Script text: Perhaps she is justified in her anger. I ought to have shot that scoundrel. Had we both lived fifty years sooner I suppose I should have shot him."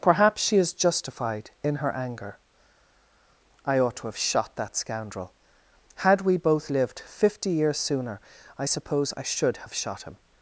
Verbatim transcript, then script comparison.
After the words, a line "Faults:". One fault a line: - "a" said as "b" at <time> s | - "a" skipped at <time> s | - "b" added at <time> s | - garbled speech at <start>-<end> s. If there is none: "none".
Perhaps she is justified in her anger. I ought to have shot that scoundrel. Had we both lived fifty years sooner I suppose I should have shot him."
Faults:
none